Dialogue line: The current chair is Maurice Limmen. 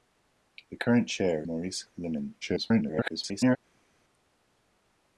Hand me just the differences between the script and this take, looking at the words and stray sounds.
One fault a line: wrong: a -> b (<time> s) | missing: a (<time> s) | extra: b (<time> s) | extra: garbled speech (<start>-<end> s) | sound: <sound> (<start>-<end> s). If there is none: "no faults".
missing: is (1.5 s)
extra: garbled speech (2.4-3.6 s)